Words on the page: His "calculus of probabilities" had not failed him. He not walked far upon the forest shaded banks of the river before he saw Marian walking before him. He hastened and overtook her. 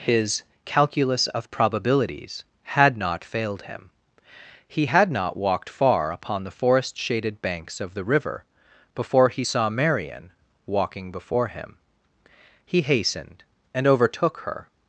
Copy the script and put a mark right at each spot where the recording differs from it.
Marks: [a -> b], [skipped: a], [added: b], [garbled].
His "calculus of probabilities" had not failed him. He [added: had] not walked far upon the forest shaded banks of the river before he saw Marian walking before him. He hastened and overtook her.